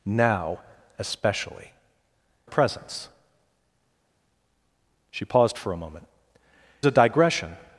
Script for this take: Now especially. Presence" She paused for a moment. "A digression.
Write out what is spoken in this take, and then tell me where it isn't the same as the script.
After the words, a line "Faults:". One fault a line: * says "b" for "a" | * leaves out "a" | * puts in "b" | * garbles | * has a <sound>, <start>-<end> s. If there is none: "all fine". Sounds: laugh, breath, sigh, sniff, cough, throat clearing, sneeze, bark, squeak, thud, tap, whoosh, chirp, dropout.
Now especially. Presence" She paused for a moment. "A digression.
Faults:
all fine